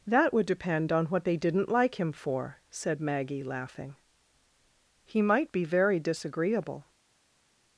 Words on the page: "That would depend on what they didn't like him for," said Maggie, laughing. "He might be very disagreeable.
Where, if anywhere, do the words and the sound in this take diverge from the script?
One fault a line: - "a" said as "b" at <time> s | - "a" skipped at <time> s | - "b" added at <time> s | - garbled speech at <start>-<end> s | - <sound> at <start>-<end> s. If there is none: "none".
none